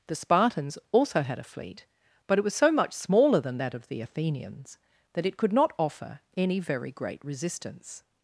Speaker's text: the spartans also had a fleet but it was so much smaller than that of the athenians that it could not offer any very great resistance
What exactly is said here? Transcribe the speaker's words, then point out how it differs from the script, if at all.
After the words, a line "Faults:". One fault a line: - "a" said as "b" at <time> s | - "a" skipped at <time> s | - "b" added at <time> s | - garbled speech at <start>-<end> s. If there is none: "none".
the spartans also had a fleet but it was so much smaller than that of the athenians that it could not offer any very great resistance
Faults:
none